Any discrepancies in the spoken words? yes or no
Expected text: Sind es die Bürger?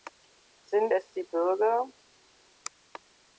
no